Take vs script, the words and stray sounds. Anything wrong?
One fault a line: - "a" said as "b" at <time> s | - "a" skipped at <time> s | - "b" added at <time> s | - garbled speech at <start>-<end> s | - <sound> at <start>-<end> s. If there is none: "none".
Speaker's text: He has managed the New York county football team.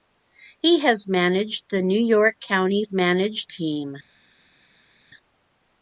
- "football" said as "managed" at 2.9 s